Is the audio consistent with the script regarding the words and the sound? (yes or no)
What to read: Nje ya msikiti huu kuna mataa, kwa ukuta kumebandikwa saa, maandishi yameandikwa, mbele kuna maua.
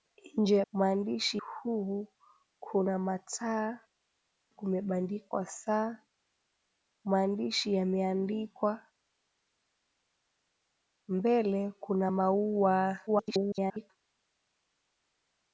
no